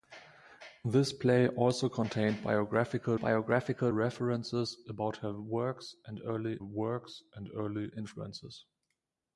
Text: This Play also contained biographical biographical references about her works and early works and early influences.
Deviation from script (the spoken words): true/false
false